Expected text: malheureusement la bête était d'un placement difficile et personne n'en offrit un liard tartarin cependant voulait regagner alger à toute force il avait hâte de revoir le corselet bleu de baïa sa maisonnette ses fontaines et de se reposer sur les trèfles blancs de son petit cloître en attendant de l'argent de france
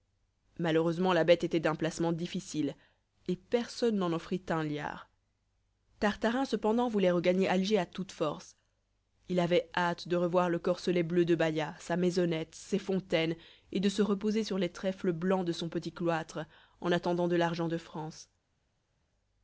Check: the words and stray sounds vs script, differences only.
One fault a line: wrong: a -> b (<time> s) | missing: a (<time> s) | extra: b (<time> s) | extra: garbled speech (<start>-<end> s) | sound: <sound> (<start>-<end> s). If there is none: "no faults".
no faults